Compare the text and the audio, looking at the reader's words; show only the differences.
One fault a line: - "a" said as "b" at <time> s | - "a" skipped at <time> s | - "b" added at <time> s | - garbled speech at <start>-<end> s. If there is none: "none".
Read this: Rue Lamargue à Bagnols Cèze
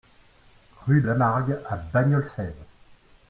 none